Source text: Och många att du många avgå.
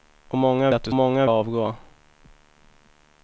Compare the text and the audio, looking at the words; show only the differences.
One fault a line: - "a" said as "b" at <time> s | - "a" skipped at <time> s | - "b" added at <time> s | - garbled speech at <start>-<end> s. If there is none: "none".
none